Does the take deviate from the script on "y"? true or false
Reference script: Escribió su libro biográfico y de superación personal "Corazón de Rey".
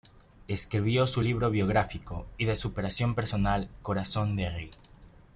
false